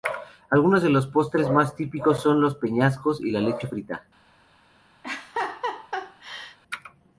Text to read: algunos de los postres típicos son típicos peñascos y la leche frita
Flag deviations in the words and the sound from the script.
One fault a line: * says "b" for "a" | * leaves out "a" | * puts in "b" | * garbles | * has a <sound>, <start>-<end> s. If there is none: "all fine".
* puts in "más"
* says "los" for "típicos"
* has a laugh, 5.0-6.6 s